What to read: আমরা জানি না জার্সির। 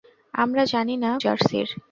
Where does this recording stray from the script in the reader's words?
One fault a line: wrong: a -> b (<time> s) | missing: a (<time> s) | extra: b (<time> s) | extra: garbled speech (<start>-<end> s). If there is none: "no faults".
no faults